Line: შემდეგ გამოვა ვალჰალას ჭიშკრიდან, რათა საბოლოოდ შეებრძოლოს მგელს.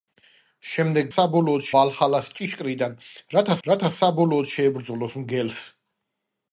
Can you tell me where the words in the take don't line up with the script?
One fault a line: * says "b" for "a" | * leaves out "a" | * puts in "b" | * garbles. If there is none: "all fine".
* says "საბოლოოდ" for "გამოვა"
* puts in "რათა"